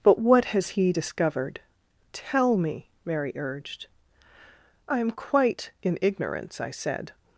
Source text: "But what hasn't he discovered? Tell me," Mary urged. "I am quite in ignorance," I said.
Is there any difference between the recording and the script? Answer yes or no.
yes